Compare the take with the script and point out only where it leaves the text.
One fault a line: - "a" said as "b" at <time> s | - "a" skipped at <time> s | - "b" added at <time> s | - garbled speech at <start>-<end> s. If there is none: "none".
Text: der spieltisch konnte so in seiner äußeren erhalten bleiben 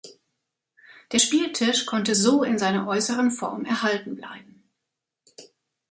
- "form" added at 3.3 s